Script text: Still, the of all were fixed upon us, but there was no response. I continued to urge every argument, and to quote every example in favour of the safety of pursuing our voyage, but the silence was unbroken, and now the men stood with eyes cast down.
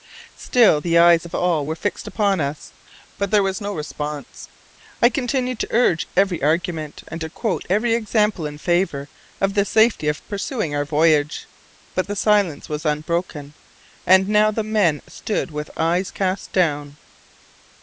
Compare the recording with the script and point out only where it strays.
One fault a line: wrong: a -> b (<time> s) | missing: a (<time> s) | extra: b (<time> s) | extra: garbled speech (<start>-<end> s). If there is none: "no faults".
extra: eyes (1.0 s)